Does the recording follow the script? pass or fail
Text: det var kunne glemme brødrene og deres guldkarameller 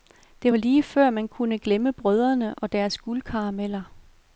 fail